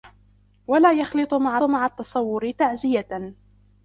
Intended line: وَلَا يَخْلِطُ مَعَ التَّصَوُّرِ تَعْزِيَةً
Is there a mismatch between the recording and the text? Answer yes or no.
yes